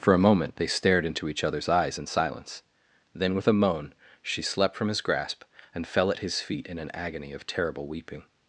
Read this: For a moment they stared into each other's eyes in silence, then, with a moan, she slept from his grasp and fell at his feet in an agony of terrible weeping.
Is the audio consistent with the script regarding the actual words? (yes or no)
yes